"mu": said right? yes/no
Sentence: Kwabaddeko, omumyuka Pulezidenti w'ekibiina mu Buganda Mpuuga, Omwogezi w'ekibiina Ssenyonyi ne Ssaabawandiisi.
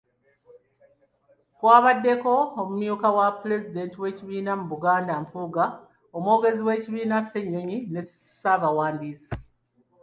yes